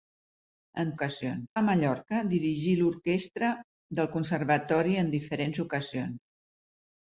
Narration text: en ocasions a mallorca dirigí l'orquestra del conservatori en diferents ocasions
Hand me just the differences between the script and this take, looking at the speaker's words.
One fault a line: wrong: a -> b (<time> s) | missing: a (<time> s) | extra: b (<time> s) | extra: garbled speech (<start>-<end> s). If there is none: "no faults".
no faults